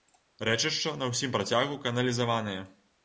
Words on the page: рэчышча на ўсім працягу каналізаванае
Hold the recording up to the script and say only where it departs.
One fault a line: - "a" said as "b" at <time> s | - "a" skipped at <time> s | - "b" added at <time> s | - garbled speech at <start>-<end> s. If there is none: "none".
none